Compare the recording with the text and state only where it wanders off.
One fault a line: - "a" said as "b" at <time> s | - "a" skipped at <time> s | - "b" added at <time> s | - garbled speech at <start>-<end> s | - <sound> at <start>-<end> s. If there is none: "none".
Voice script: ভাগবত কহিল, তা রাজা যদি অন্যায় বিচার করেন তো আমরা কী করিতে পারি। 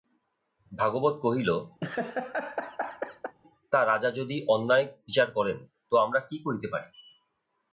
- laugh at 1.8-3.3 s